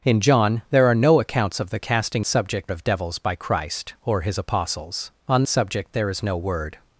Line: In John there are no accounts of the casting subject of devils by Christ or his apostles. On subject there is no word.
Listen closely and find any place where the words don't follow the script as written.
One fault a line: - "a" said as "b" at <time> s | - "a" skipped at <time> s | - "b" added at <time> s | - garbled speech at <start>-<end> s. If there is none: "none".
none